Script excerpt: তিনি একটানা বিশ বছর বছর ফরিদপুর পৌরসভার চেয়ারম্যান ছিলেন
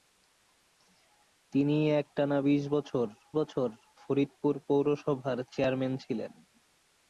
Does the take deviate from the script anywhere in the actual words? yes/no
no